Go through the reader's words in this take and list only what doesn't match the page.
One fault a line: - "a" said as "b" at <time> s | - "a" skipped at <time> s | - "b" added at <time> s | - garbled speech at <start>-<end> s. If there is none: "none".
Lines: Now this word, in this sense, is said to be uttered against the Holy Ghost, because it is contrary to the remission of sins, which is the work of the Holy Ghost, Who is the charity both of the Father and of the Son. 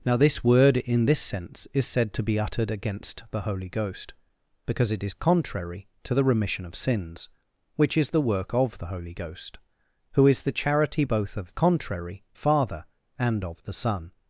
- "the" said as "contrary" at 11.5 s